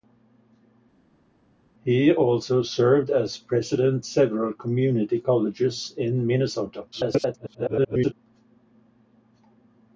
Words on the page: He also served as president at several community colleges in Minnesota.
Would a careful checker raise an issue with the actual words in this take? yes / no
yes